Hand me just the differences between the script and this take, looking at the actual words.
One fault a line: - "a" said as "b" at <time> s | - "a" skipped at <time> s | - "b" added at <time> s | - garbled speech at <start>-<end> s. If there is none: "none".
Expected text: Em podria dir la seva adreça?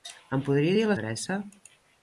- "seva" skipped at 1.0 s